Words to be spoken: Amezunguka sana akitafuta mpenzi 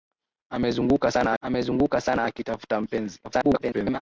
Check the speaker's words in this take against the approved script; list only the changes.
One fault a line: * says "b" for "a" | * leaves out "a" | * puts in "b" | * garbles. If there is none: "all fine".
* puts in "amezunguka sana"
* garbles